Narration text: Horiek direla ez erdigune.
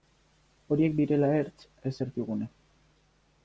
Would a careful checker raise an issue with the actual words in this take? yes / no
yes